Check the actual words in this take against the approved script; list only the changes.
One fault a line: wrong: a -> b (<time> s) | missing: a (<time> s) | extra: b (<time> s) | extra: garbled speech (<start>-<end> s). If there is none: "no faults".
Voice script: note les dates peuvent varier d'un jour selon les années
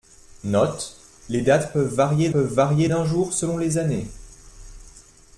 extra: peuvent varier (2.3 s)